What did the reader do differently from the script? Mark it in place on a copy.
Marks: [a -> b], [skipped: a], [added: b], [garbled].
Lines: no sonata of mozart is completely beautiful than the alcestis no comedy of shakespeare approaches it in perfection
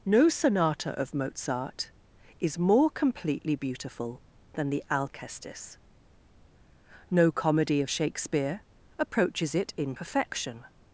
no sonata of mozart is [added: more] completely beautiful than the alcestis no comedy of shakespeare approaches it in perfection